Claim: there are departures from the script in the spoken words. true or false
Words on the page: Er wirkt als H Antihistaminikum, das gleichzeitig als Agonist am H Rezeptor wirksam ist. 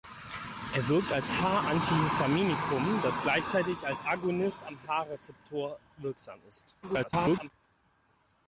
true